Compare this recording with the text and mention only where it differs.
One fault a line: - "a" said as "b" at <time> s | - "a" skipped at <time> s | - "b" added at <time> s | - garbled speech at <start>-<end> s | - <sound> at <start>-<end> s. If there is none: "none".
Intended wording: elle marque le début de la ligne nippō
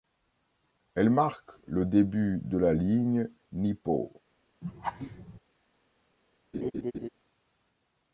- laugh at 4.6-5.4 s
- laugh at 6.5-7.1 s